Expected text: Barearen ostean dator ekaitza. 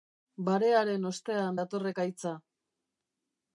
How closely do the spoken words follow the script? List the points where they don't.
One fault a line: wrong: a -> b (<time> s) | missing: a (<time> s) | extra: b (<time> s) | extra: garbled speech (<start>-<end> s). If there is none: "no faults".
no faults